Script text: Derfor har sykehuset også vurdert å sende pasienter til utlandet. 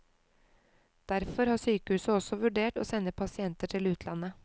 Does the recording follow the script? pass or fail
pass